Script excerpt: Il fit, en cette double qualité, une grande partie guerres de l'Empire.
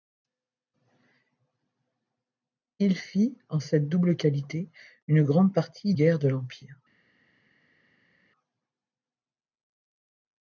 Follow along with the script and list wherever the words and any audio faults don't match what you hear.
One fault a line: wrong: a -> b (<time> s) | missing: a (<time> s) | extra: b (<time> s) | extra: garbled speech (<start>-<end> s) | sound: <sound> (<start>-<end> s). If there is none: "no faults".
no faults